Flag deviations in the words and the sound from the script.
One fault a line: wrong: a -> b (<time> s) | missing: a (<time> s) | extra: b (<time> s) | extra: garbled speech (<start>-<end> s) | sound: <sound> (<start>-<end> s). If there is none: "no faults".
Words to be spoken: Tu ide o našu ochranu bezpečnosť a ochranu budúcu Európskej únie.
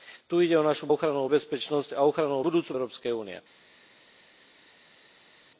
no faults